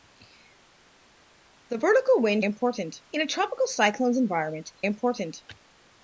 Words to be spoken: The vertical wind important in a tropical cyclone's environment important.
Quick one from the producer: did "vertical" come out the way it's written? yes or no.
yes